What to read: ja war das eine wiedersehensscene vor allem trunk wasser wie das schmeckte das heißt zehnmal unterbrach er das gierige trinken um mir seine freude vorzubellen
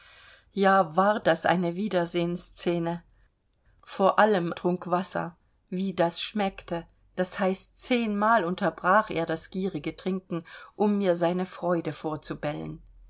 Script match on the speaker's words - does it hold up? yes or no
yes